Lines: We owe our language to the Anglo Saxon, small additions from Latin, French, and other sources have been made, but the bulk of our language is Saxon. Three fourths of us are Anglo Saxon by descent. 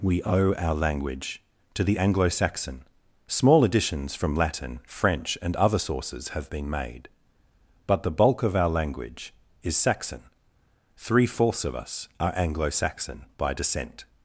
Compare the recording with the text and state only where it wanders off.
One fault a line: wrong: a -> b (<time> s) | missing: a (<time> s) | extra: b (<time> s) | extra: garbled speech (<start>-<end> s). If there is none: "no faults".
no faults